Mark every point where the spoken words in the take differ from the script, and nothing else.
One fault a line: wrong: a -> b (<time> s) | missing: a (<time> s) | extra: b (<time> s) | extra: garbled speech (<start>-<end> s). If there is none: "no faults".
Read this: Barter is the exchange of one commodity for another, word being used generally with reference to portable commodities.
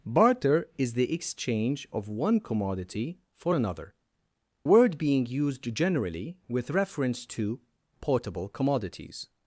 no faults